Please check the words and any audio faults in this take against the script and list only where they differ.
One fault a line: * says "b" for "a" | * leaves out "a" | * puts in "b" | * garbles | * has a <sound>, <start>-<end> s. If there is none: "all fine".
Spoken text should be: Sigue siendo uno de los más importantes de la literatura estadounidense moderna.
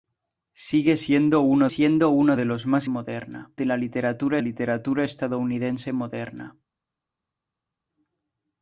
* puts in "siendo uno"
* says "moderna" for "importantes"
* puts in "literatura"